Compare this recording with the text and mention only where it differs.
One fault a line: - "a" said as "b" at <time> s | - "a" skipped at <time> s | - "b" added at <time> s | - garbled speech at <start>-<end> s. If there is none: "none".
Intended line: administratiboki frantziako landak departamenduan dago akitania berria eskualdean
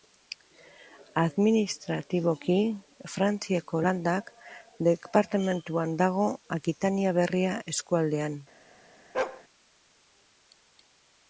none